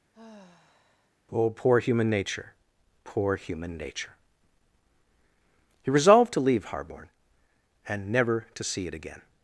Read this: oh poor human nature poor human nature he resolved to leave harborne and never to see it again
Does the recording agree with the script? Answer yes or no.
yes